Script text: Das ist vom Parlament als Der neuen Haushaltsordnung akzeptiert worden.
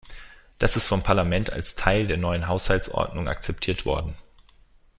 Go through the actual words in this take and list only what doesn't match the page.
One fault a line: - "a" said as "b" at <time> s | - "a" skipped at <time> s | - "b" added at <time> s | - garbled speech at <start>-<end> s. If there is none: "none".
- "Teil" added at 1.8 s